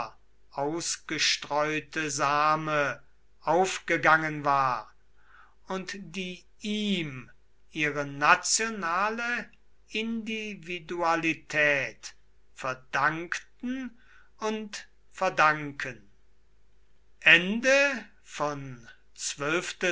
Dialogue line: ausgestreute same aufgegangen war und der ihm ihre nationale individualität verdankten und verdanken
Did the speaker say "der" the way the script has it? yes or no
no